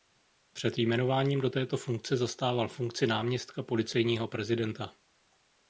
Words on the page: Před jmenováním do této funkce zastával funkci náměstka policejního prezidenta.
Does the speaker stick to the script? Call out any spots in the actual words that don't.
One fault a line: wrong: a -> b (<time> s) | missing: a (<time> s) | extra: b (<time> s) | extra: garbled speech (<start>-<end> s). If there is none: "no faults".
no faults